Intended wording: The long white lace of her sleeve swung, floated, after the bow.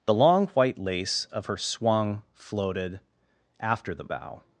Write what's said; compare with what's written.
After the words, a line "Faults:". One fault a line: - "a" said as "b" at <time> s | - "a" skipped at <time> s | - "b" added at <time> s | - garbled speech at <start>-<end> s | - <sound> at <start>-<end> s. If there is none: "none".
The long white lace of her swung, floated, after the bow.
Faults:
- "sleeve" skipped at 1.6 s